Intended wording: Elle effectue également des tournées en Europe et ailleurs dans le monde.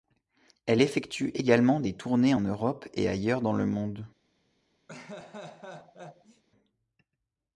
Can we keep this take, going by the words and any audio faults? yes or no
no